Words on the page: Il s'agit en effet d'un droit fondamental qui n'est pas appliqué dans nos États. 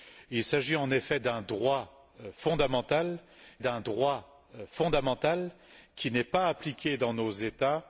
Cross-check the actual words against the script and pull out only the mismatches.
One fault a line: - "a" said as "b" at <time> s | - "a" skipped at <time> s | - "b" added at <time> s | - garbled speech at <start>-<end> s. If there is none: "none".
- "d'un droit fondamental" added at 3.6 s